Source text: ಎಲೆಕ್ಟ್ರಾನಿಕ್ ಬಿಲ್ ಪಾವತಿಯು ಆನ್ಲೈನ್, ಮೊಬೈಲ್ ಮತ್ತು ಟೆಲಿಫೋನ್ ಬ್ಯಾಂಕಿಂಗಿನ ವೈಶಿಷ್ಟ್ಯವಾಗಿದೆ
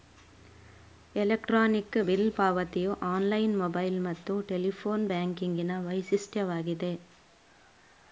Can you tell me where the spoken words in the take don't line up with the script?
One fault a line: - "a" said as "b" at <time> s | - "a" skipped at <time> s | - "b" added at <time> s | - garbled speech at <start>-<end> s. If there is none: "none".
none